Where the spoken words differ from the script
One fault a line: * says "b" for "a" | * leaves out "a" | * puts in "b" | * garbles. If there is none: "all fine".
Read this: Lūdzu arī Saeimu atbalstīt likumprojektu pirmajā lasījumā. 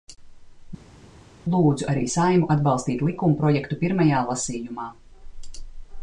all fine